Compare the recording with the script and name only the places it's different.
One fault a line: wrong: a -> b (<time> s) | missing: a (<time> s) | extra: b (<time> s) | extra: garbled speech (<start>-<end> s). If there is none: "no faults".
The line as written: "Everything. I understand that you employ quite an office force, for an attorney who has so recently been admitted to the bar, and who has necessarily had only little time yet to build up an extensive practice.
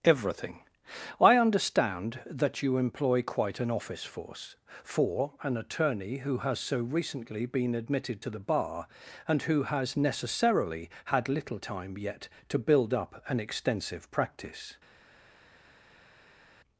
missing: only (11.3 s)